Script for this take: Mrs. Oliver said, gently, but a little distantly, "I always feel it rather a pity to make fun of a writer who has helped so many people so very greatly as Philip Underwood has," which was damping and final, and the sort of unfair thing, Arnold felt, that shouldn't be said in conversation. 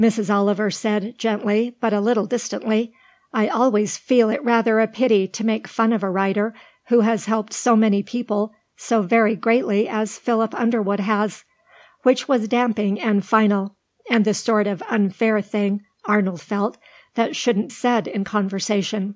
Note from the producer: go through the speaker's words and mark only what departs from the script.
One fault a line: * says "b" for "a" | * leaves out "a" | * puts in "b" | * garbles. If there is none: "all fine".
* leaves out "be"